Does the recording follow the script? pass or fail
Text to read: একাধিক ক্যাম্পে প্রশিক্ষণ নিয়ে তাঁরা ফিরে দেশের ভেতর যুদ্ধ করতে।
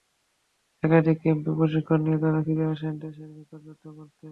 fail